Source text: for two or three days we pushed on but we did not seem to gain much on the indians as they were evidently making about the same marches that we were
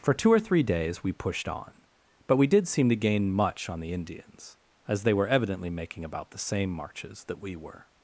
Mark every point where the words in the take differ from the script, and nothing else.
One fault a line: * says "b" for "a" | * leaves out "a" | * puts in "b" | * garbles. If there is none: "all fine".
* leaves out "not"